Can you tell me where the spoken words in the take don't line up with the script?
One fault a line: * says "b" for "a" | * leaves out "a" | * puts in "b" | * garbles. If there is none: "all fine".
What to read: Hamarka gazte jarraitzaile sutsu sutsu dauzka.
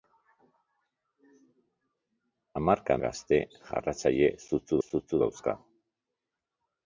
all fine